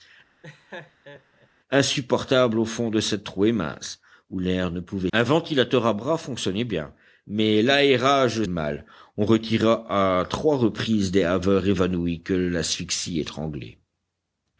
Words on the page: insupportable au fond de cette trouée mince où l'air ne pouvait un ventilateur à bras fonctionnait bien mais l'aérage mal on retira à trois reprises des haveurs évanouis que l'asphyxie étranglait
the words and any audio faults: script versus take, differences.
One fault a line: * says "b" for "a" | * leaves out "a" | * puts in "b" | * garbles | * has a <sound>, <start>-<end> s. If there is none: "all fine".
* has a laugh, 0.4-1.5 s